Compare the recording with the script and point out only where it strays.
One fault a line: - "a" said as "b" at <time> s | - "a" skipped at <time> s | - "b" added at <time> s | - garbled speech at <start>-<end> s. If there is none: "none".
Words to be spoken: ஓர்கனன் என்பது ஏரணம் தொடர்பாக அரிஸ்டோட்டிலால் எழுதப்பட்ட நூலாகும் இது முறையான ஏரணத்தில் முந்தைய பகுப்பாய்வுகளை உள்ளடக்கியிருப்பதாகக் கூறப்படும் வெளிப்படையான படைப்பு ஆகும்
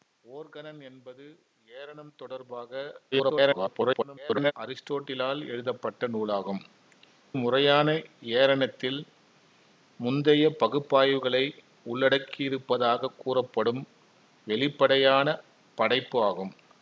- garbled speech at 3.1-4.5 s
- "இது" skipped at 6.6 s